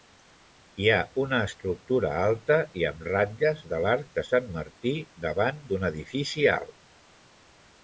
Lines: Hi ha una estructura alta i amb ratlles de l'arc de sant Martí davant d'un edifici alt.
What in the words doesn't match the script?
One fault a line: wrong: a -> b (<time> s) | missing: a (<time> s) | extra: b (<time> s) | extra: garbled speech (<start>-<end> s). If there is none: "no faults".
no faults